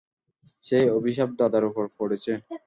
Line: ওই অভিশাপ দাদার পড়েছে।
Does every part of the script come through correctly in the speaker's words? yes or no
no